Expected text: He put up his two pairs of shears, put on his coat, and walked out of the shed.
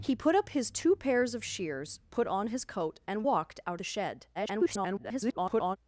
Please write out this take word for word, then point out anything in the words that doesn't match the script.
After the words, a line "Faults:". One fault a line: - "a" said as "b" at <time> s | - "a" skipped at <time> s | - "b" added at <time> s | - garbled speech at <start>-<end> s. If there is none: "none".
He put up his two pairs of shears, put on his coat, and walked out the shed. [garbled]
Faults:
- "of" skipped at 3.8 s
- garbled speech at 4.3-5.8 s